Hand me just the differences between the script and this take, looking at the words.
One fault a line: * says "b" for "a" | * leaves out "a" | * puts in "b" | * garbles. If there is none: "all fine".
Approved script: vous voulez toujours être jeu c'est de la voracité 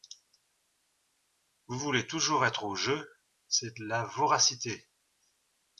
* puts in "au"